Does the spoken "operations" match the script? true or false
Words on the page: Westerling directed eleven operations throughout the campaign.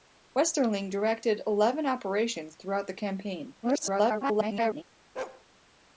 true